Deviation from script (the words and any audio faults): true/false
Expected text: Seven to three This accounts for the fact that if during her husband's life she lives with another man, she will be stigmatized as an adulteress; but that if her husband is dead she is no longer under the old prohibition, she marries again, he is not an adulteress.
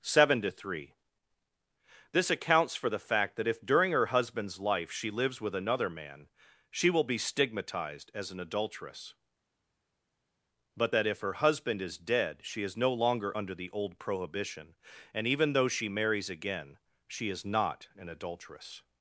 true